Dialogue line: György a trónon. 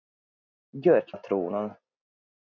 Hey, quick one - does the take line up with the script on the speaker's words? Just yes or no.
yes